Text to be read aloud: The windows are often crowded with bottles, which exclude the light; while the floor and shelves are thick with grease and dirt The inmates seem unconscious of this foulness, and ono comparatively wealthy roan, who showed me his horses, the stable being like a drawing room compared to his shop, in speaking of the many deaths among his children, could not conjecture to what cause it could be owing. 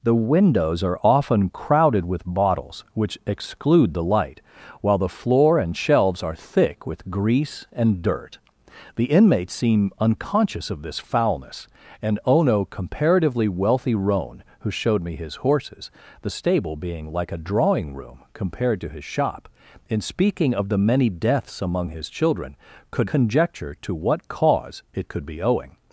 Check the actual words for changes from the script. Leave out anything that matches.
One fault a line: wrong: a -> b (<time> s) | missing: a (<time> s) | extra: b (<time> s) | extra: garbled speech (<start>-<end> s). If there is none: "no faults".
missing: not (23.1 s)